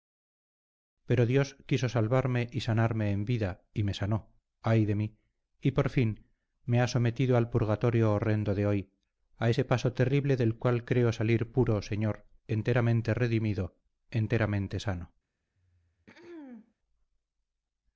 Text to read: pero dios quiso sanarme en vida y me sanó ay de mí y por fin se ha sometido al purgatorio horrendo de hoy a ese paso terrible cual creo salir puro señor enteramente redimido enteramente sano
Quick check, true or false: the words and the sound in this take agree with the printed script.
false